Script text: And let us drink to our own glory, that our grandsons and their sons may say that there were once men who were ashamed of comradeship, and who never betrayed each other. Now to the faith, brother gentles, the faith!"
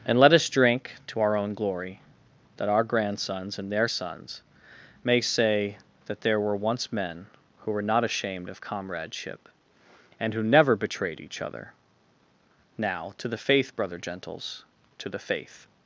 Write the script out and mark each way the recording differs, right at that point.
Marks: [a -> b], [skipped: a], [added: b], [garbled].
And let us drink to our own glory, that our grandsons and their sons may say that there were once men who were [added: not] ashamed of comradeship, and who never betrayed each other. Now to the faith, brother gentles, [added: to] the faith!"